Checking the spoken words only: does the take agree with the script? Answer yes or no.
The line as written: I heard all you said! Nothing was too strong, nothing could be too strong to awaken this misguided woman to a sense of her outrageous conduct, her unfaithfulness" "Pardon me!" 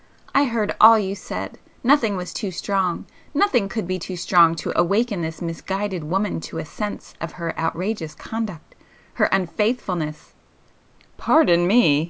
yes